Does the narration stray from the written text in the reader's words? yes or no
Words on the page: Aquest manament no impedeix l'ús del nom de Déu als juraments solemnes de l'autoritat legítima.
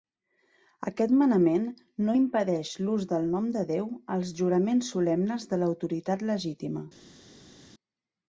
no